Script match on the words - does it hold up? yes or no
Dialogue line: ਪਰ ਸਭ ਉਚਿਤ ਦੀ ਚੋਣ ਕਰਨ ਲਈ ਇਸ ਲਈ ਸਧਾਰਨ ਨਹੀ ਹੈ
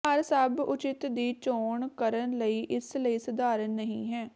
yes